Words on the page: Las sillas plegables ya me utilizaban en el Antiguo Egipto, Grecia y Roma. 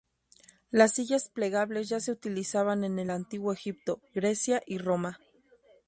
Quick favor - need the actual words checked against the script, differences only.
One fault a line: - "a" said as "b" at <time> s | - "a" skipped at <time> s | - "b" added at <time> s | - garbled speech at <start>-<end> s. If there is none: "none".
- "me" said as "se" at 2.0 s